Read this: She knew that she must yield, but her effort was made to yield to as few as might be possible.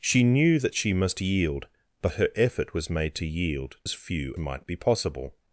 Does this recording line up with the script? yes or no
no